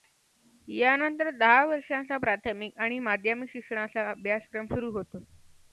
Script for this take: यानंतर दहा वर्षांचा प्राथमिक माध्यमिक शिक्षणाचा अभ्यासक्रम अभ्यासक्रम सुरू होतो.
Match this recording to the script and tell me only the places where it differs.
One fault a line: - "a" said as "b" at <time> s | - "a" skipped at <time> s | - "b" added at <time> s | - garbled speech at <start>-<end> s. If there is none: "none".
- "आणि" added at 2.8 s
- "अभ्यासक्रम" skipped at 4.7 s